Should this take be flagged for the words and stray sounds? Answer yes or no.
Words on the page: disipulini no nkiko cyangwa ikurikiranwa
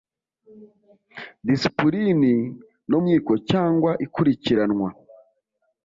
no